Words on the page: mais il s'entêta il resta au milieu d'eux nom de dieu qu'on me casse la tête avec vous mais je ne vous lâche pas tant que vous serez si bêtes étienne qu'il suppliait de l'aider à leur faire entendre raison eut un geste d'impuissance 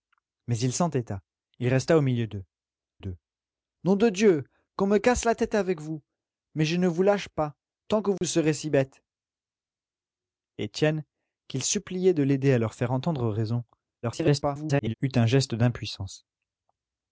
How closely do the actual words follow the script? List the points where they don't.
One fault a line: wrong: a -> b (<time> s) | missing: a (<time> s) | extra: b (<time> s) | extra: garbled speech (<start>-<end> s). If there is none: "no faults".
extra: d'eux (3.0 s)
extra: garbled speech (14.0-14.9 s)